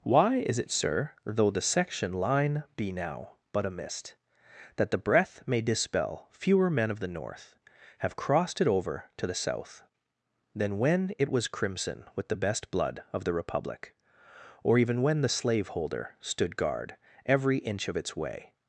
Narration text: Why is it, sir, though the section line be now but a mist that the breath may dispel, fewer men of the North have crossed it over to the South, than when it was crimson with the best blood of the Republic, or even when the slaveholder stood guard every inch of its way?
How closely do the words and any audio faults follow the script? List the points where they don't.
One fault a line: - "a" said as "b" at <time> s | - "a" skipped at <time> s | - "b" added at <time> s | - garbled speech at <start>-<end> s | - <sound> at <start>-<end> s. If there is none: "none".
none